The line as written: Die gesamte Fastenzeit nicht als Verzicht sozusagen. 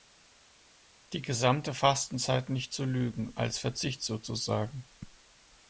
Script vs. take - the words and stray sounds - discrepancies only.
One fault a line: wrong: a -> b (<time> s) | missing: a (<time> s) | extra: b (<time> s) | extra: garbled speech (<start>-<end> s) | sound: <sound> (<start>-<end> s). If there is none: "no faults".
extra: zu Lügen (2.7 s)